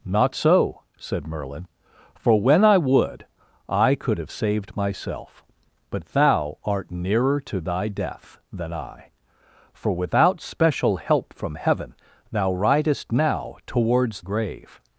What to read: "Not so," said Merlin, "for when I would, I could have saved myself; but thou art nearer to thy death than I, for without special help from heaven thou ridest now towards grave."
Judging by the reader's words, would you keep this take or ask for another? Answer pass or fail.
pass